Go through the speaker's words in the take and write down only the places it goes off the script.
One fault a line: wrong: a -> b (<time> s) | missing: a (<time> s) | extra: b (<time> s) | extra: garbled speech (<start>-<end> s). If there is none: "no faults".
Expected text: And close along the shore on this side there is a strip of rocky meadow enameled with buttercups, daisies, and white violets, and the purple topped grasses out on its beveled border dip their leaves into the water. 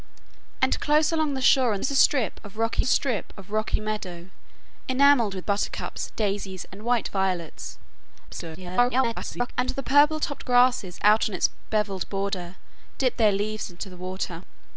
wrong: this side there is a -> is a strip of rocky (1.8 s)
extra: garbled speech (8.3-9.5 s)